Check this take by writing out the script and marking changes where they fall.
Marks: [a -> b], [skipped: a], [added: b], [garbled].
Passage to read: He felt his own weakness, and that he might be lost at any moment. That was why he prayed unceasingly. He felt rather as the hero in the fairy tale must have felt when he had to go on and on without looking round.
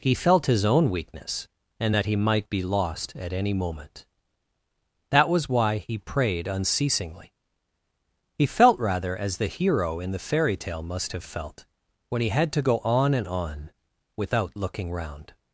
He felt his own weakness, and that he might be lost at any moment. That was why he prayed unceasingly. He felt rather as the hero in the fairy tale must have felt when he had to go on and on without looking round.